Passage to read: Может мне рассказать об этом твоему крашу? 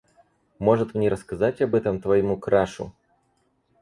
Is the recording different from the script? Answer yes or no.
no